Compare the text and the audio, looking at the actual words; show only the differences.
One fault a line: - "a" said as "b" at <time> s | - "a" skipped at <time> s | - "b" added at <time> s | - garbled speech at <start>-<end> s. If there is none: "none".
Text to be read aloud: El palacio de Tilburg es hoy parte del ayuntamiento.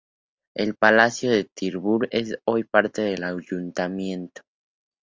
none